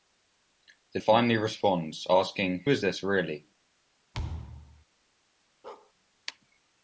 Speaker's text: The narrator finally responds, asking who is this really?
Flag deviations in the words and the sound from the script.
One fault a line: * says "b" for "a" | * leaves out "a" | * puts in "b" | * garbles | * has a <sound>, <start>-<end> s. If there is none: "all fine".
* leaves out "narrator"
* leaves out "who"
* has a thud, 4.1-4.8 s
* has a bark, 5.6-5.9 s